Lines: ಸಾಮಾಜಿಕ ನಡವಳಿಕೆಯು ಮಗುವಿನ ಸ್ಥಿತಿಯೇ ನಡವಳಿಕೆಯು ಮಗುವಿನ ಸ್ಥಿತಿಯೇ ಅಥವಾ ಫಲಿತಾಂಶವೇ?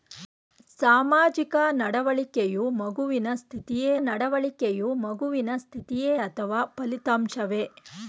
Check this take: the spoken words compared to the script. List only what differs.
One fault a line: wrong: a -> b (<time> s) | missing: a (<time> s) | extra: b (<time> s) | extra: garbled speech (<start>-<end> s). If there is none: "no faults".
no faults